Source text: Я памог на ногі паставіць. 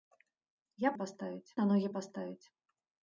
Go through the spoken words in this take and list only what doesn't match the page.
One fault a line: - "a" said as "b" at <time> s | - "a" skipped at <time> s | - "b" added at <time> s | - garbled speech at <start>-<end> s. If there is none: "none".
- "памог" said as "паставіць" at 1.0 s